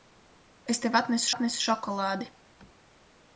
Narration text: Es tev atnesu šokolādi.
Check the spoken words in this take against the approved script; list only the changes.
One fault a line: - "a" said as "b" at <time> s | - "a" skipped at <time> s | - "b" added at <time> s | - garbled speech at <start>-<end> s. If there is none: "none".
- "atnesu" added at 1.3 s